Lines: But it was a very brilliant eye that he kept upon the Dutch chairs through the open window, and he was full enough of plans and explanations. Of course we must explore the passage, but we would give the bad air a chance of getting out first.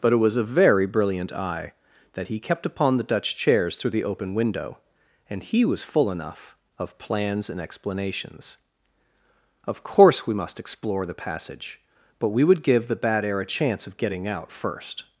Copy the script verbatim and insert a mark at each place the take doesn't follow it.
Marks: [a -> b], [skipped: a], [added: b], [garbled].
But it was a very brilliant eye that he kept upon the Dutch chairs through the open window, and he was full enough of plans and explanations. Of course we must explore the passage, but we would give the bad air a chance of getting out first.